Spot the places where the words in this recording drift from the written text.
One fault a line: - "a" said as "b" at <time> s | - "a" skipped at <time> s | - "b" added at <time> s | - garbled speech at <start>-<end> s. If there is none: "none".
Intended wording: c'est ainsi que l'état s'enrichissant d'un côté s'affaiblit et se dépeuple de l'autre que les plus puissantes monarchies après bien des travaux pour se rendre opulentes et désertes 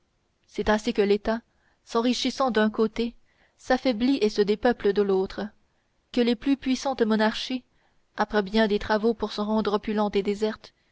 none